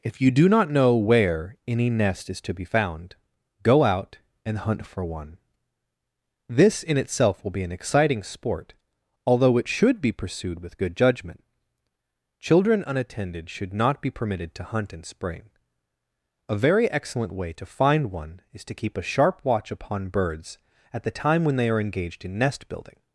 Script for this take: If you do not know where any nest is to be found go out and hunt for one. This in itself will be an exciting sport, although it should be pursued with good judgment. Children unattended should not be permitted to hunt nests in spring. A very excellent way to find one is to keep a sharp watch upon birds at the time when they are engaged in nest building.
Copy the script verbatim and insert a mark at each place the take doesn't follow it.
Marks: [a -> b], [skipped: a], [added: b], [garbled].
If you do not know where any nest is to be found go out and hunt for one. This in itself will be an exciting sport, although it should be pursued with good judgment. Children unattended should not be permitted to hunt [skipped: nests] in spring. A very excellent way to find one is to keep a sharp watch upon birds at the time when they are engaged in nest building.